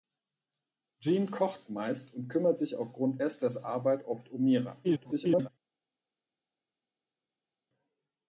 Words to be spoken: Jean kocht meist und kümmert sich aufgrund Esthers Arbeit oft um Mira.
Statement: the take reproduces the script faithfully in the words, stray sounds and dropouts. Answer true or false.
false